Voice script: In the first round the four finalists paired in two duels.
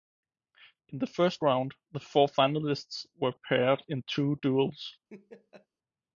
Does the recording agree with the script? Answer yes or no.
no